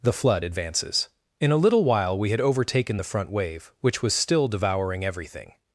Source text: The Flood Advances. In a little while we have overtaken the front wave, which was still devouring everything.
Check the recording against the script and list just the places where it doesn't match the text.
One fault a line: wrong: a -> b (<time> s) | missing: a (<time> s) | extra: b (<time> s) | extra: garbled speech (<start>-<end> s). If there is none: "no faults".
wrong: have -> had (2.3 s)